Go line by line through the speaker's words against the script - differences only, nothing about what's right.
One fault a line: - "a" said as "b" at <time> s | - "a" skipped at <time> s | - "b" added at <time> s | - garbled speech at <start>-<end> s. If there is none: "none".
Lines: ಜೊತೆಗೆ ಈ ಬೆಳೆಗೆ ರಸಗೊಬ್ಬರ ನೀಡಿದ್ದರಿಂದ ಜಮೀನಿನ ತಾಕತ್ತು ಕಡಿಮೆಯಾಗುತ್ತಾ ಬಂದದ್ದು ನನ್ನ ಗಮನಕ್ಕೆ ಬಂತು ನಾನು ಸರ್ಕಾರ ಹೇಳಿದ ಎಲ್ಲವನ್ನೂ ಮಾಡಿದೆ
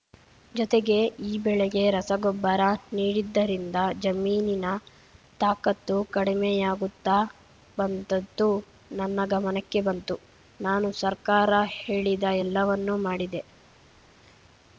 none